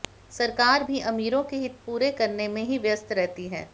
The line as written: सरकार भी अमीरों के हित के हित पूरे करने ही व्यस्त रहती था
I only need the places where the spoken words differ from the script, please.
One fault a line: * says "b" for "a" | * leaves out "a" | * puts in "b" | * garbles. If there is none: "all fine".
* leaves out "के हित"
* puts in "में"
* says "है" for "था"